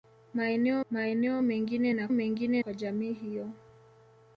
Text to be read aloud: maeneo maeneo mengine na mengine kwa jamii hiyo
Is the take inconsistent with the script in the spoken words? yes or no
no